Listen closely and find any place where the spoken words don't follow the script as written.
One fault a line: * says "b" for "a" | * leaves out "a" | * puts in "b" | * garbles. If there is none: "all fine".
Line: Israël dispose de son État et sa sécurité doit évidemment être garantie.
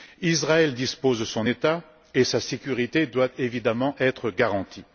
all fine